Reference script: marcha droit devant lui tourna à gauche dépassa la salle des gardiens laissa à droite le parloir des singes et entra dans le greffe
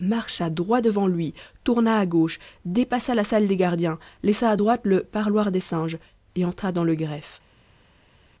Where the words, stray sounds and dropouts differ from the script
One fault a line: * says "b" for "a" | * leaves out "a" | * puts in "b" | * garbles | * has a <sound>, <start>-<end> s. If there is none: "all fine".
all fine